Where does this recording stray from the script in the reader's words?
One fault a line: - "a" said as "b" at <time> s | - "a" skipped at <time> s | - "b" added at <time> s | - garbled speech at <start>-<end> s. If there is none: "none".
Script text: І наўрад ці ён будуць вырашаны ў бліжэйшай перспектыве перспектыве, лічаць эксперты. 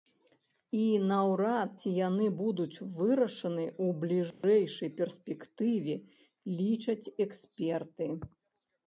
- "ён" said as "яны" at 2.0 s
- "перспектыве" skipped at 5.9 s